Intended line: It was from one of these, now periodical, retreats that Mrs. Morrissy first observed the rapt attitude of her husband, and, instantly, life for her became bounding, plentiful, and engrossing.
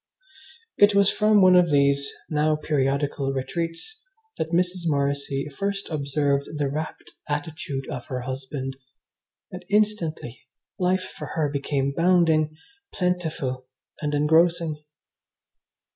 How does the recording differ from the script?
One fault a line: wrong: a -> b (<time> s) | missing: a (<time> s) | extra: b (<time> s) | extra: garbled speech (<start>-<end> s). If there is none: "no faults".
no faults